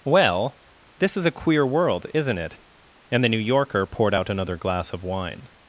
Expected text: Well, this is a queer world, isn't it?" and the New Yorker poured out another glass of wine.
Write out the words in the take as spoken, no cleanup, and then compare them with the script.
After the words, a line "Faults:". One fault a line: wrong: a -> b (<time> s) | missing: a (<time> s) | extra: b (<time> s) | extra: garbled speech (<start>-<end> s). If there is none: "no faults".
Well, this is a queer world, isn't it?" and the New Yorker poured out another glass of wine.
Faults:
no faults